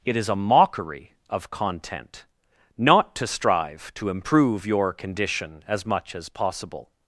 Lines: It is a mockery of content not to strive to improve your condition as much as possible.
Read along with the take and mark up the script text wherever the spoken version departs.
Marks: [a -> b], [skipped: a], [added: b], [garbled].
It is a mockery of content not to strive to improve your condition as much as possible.